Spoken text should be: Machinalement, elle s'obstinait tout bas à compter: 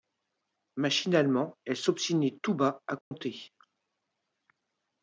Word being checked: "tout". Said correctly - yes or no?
yes